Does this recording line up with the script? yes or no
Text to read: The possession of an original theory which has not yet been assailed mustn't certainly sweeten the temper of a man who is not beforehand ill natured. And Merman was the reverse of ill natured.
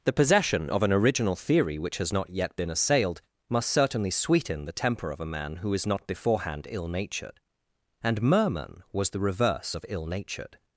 no